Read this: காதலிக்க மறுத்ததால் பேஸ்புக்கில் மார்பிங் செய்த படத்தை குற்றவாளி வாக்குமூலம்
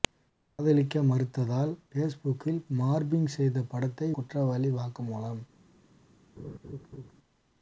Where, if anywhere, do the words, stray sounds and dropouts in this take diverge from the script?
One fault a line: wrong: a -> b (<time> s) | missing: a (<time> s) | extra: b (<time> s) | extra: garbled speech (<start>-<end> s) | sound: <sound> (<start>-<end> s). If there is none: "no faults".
sound: laugh (6.4-7.1 s)